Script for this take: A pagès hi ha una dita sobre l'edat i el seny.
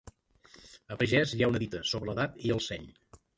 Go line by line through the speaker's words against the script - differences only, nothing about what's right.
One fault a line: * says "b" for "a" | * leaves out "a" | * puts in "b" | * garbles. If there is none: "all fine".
all fine